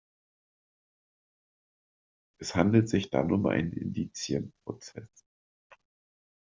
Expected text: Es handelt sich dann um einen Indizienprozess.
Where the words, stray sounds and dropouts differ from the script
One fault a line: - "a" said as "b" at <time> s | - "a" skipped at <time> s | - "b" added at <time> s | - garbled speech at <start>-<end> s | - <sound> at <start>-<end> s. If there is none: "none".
none